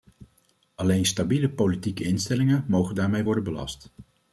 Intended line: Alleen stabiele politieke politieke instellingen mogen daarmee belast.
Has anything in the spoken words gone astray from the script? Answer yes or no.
yes